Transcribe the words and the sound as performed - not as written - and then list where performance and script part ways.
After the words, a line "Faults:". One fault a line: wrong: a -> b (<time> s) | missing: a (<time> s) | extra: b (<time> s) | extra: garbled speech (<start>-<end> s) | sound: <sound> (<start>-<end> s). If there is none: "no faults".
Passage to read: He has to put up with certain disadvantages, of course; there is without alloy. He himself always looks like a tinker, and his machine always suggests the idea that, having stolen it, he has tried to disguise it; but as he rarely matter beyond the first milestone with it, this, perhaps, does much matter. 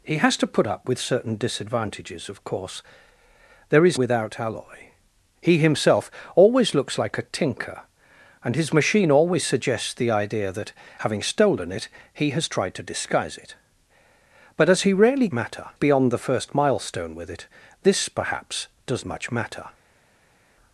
He has to put up with certain disadvantages, of course; there is without alloy. He himself always looks like a tinker, and his machine always suggests the idea that, having stolen it, he has tried to disguise it; but as he rarely matter beyond the first milestone with it, this, perhaps, does much matter.
Faults:
no faults